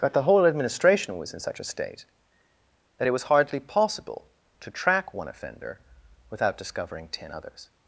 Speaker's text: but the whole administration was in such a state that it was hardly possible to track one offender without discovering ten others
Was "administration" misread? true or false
false